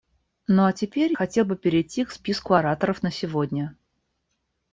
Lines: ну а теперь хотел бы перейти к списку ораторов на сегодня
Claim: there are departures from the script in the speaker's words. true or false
false